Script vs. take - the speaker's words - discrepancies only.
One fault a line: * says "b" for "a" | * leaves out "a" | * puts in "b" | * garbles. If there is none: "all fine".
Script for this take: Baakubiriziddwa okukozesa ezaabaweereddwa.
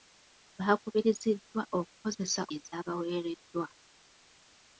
all fine